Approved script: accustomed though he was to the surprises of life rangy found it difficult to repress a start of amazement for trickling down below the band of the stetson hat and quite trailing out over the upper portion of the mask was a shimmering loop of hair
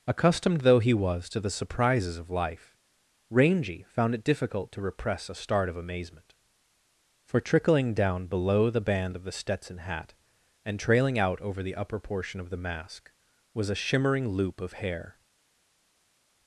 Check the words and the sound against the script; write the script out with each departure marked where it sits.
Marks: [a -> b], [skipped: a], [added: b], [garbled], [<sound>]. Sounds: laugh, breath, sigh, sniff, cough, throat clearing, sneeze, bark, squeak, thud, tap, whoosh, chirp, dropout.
accustomed though he was to the surprises of life rangy found it difficult to repress a start of amazement for trickling down below the band of the stetson hat and [skipped: quite] trailing out over the upper portion of the mask was a shimmering loop of hair